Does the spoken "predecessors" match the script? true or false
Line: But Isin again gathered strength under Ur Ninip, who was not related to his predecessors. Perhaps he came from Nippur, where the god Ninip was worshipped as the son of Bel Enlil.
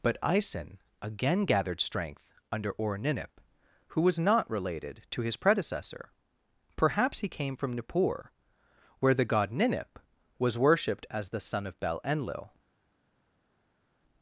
false